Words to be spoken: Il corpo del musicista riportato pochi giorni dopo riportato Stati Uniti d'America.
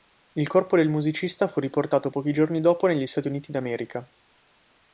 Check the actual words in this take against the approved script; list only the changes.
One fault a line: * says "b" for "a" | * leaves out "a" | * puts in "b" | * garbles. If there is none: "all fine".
* puts in "fu"
* says "negli" for "riportato"